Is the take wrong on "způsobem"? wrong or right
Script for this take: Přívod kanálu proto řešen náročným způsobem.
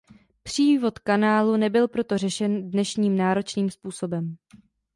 right